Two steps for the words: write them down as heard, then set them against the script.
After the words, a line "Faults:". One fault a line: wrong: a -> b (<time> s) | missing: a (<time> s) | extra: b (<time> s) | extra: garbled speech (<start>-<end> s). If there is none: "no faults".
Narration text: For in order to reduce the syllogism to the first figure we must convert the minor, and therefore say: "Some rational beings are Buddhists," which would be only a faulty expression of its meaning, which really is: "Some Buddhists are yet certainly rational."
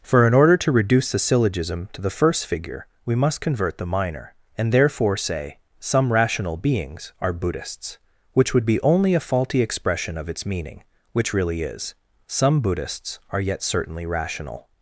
For in order to reduce the syllogism to the first figure we must convert the minor, and therefore say: "Some rational beings are Buddhists," which would be only a faulty expression of its meaning, which really is: "Some Buddhists are yet certainly rational."
Faults:
no faults